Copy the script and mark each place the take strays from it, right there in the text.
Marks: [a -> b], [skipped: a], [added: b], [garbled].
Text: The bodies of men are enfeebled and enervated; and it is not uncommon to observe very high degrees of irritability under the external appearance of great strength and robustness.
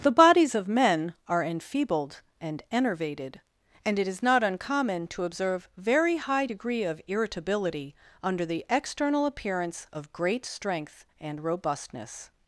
The bodies of men are enfeebled and enervated; and it is not uncommon to observe very high [degrees -> degree] of irritability under the external appearance of great strength and robustness.